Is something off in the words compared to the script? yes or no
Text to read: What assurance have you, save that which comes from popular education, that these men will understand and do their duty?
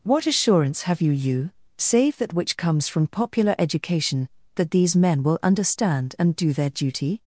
yes